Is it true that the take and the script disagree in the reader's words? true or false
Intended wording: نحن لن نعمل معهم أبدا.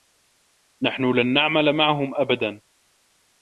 false